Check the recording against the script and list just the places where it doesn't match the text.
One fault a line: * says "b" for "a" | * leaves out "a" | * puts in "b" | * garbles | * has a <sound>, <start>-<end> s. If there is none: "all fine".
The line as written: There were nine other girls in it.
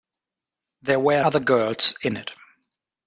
* leaves out "nine"